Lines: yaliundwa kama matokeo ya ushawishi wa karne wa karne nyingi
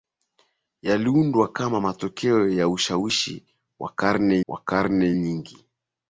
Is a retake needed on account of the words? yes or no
no